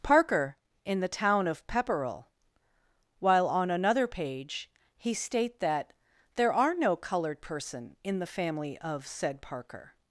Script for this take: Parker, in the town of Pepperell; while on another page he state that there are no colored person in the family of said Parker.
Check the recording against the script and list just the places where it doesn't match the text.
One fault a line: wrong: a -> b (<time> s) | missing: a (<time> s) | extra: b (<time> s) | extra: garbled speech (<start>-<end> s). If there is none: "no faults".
no faults